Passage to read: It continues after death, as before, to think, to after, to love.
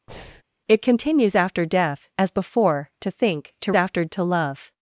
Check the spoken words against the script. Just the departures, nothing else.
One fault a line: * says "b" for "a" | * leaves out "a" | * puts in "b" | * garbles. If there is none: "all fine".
all fine